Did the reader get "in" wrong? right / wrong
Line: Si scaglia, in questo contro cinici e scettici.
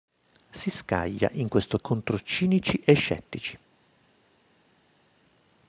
right